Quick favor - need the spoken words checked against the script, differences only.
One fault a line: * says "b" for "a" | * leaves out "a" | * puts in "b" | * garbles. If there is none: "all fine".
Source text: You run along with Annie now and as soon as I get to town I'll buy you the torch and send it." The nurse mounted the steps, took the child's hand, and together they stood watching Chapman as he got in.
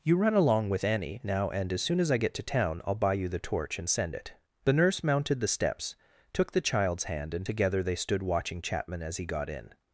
all fine